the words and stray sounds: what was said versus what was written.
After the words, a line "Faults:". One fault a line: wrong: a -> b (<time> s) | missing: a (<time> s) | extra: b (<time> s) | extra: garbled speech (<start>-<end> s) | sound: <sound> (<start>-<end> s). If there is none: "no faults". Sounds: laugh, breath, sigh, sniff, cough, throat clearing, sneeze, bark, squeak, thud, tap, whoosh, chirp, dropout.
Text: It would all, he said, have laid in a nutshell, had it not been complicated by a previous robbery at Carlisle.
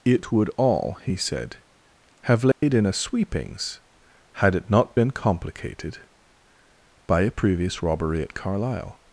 It would all, he said, have laid in a sweepings, had it not been complicated by a previous robbery at Carlisle.
Faults:
sound: dropout (2.5-2.6 s)
wrong: nutshell -> sweepings (2.9 s)